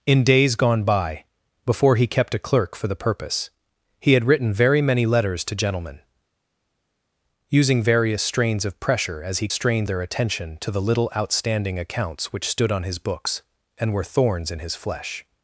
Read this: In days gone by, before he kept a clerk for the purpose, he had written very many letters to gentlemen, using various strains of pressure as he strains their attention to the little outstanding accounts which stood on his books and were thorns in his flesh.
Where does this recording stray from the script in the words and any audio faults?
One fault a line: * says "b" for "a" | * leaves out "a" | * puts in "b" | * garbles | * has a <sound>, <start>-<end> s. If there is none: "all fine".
all fine